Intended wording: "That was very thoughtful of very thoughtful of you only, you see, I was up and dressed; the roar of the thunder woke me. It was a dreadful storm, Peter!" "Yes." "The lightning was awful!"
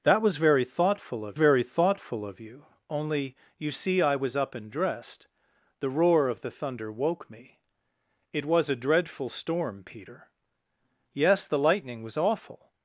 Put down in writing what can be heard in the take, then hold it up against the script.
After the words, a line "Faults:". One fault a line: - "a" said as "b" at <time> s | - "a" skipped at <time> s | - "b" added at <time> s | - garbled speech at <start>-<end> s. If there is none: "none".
"That was very thoughtful of very thoughtful of you only, you see, I was up and dressed; the roar of the thunder woke me. It was a dreadful storm, Peter!" "Yes." "The lightning was awful!"
Faults:
none